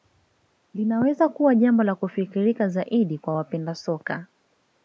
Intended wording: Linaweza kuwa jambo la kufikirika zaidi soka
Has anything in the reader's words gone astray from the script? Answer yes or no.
yes